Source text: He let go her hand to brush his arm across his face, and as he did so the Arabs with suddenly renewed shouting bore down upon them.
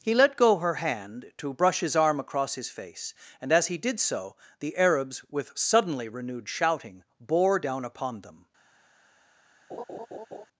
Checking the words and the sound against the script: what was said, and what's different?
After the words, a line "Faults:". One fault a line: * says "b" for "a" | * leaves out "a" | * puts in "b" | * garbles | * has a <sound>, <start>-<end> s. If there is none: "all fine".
He let go her hand to brush his arm across his face, and as he did so the Arabs with suddenly renewed shouting bore down upon them.
Faults:
* has a laugh, 9.7-10.5 s